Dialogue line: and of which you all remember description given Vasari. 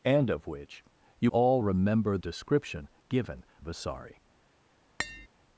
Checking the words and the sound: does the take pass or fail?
fail